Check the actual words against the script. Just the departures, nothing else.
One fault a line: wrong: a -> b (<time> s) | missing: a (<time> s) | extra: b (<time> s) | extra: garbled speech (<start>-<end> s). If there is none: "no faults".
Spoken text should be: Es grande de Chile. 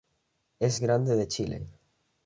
no faults